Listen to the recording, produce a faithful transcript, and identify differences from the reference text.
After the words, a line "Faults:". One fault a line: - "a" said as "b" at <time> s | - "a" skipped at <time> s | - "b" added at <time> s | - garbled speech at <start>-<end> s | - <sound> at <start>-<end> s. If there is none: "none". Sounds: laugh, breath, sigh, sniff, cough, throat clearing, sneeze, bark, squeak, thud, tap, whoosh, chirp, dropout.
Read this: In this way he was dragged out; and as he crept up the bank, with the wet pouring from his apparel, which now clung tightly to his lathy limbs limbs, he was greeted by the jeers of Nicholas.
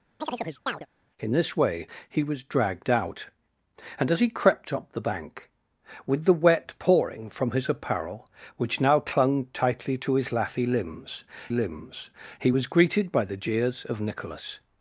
In this way he was dragged out; and as he crept up the bank, with the wet pouring from his apparel, which now clung tightly to his lathy limbs limbs, he was greeted by the jeers of Nicholas.
Faults:
- chirp at 0.2-0.9 s